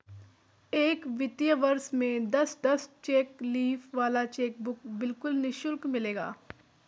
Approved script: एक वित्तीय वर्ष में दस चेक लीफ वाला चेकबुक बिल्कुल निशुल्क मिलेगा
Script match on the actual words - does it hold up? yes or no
no